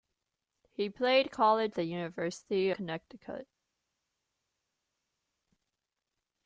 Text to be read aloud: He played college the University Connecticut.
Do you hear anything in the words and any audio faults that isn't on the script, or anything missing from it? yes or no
no